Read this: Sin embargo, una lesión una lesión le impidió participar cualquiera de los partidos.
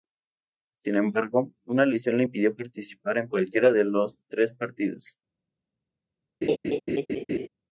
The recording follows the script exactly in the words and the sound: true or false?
false